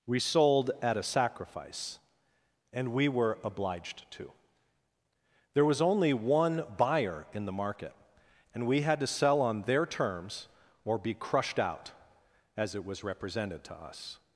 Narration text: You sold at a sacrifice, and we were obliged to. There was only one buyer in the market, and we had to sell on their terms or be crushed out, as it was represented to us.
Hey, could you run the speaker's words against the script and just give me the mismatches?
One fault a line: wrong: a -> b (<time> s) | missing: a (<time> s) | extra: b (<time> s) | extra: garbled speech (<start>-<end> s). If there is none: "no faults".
wrong: You -> We (0.1 s)